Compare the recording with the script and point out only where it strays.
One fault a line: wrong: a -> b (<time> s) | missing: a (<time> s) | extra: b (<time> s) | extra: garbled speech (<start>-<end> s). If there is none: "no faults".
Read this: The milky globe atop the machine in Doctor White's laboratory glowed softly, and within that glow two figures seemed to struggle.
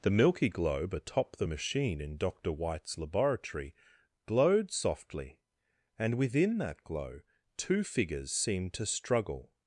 no faults